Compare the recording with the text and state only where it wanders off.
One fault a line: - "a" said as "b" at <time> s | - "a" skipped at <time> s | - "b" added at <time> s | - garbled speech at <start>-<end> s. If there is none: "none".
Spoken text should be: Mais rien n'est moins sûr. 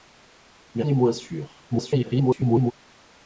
- "rien" skipped at 0.8 s
- garbled speech at 1.7-2.7 s